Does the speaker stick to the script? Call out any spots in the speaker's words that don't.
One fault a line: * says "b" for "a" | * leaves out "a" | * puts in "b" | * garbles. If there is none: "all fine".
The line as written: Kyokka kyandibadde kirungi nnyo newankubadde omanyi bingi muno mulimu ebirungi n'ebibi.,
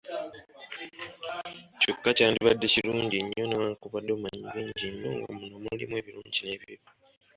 * puts in "nnyo nga"